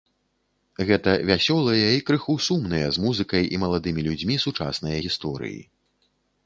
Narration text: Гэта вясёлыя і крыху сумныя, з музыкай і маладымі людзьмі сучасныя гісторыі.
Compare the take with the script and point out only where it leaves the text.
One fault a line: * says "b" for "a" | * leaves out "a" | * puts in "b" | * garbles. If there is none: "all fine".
all fine